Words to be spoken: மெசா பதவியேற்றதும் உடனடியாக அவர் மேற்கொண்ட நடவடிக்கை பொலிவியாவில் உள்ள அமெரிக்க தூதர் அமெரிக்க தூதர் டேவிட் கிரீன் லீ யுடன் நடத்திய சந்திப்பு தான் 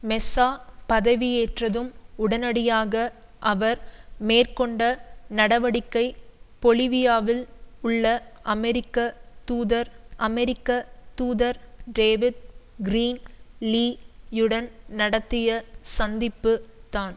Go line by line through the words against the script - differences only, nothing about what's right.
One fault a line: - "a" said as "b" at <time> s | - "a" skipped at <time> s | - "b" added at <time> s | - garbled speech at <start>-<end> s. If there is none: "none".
none